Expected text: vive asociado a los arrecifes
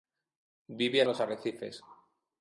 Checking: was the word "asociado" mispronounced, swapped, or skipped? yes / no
yes